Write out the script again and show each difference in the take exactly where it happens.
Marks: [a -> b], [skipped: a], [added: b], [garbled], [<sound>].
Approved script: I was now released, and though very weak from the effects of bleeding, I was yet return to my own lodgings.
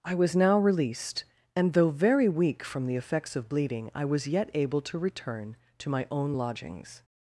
I was now released, and though very weak from the effects of bleeding, I was yet [added: able to] return to my own lodgings.